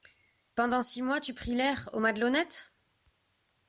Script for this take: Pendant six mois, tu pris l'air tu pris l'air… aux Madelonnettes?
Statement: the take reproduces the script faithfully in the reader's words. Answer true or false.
false